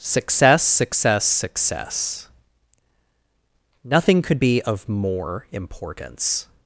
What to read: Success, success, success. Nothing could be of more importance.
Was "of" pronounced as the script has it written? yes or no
yes